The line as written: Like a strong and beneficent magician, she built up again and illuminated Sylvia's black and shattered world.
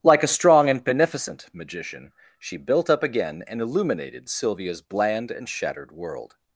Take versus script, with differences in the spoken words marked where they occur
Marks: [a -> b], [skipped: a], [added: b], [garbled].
Like a strong and beneficent magician, she built up again and illuminated Sylvia's [black -> bland] and shattered world.